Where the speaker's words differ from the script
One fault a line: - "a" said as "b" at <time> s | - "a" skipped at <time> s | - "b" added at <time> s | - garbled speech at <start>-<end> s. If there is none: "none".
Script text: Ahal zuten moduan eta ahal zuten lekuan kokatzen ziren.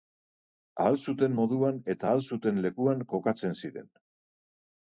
none